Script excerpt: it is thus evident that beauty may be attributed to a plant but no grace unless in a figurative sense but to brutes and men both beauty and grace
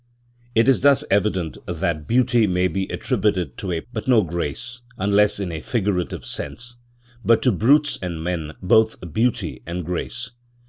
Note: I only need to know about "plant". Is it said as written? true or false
false